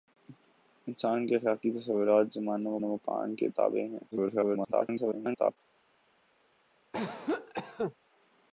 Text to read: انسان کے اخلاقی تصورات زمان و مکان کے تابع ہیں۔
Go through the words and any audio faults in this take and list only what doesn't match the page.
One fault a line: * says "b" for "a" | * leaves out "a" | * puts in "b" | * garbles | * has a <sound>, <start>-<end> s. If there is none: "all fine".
* puts in "و"
* garbles
* has a cough, 6.9-7.9 s